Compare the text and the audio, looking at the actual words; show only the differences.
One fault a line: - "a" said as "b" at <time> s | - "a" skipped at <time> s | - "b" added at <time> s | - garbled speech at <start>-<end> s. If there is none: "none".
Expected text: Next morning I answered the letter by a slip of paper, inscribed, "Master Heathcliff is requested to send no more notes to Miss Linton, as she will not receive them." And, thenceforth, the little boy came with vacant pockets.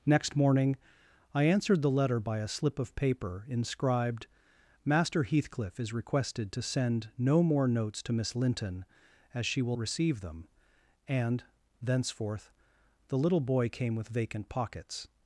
- "not" skipped at 9.8 s